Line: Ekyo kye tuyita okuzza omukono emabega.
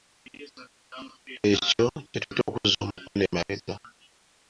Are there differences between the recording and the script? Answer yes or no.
no